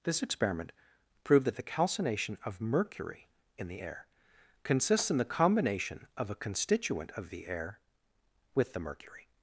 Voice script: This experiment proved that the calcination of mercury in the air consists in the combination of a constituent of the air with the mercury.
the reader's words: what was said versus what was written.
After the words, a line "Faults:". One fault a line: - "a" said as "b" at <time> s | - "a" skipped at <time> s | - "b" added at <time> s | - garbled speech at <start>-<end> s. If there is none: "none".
This experiment proved that the calcination of mercury in the air consists in the combination of a constituent of the air with the mercury.
Faults:
none